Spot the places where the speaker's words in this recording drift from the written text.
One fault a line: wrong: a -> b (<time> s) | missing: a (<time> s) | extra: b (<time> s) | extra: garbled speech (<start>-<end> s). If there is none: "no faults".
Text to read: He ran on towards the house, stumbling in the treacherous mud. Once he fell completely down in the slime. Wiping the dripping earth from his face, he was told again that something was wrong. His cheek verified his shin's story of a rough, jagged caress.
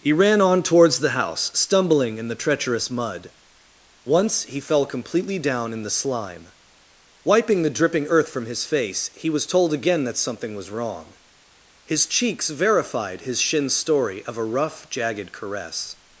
wrong: cheek -> cheeks (12.1 s)